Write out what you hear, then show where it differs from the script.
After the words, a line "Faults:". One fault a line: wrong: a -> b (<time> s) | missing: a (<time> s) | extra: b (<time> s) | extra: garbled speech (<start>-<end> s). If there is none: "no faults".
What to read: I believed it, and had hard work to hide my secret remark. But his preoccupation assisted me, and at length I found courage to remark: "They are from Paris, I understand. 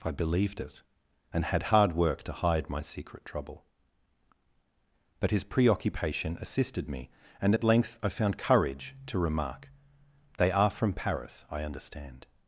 I believed it, and had hard work to hide my secret trouble. But his preoccupation assisted me, and at length I found courage to remark: "They are from Paris, I understand.
Faults:
wrong: remark -> trouble (3.2 s)